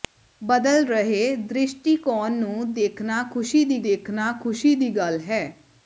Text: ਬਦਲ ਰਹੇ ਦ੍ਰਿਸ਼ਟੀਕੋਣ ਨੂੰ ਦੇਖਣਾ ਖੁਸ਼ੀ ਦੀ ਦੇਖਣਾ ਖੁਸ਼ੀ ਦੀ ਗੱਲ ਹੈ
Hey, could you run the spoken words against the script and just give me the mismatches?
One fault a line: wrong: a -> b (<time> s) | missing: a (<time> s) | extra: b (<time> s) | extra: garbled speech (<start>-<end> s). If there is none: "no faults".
no faults